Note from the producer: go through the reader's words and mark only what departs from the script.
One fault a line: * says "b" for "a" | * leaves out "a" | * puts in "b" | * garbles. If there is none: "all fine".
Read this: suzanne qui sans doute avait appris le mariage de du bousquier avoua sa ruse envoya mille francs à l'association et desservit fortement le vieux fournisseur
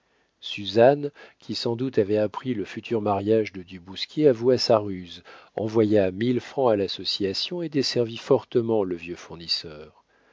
* puts in "futur"